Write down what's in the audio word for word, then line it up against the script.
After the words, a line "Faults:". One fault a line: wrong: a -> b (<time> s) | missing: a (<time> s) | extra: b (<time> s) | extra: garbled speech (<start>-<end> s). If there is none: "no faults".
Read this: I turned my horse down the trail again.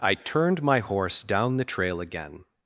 I turned my horse down the trail again.
Faults:
no faults